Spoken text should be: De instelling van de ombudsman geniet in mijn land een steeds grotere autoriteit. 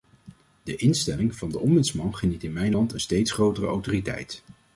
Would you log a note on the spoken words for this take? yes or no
no